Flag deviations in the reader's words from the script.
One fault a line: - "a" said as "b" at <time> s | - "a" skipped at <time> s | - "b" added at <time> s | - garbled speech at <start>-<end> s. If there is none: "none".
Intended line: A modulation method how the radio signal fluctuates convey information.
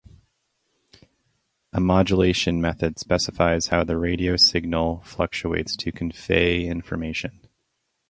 - "specifies" added at 3.0 s
- "to" added at 5.8 s